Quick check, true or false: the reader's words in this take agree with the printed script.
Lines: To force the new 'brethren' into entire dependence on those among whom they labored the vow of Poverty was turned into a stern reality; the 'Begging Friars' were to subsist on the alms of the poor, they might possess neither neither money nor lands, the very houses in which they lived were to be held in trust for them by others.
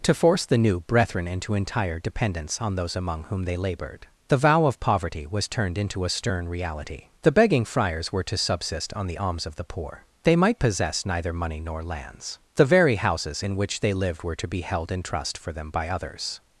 false